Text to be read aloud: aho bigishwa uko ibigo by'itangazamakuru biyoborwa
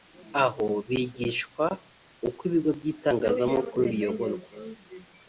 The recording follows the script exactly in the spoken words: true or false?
true